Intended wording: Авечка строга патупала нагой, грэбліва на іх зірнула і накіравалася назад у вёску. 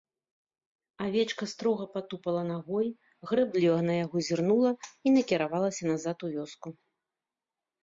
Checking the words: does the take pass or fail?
fail